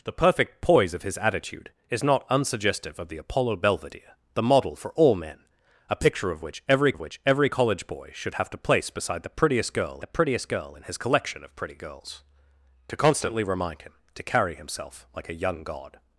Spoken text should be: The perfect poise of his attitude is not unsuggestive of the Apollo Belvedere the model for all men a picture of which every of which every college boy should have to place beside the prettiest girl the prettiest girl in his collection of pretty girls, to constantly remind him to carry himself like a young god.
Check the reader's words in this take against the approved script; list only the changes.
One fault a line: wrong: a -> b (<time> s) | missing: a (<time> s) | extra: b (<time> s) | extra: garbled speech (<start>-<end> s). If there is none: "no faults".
no faults